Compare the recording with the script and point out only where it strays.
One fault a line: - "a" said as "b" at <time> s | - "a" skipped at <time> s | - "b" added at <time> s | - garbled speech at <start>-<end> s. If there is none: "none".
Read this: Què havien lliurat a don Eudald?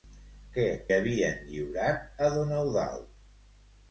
none